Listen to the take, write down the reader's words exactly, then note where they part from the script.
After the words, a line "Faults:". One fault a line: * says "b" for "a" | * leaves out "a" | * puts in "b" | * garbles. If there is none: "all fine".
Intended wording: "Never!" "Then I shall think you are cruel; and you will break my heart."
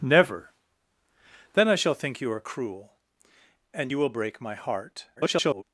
"Never!" "Then I shall think you are cruel; and you will break my heart." [garbled]
Faults:
* garbles